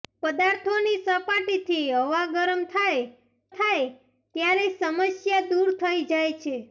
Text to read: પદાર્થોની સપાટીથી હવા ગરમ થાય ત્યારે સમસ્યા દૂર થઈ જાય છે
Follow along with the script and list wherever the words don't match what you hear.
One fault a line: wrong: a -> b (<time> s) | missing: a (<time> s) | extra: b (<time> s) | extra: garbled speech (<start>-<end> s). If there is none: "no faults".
extra: થાય (3.5 s)